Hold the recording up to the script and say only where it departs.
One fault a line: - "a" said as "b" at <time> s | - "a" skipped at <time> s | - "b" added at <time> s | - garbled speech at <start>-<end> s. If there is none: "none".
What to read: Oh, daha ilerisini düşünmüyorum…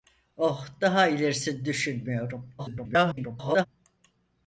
- garbled speech at 2.6-3.7 s